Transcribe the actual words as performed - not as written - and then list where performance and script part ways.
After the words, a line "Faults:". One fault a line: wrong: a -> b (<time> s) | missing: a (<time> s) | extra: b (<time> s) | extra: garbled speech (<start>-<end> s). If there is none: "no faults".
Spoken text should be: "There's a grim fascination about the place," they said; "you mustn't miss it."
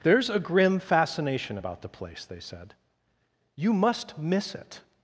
"There's a grim fascination about the place," they said; "you must miss it."
Faults:
wrong: mustn't -> must (3.7 s)